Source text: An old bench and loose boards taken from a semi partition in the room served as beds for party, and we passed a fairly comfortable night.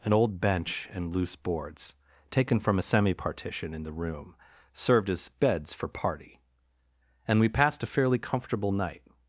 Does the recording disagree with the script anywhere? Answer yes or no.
no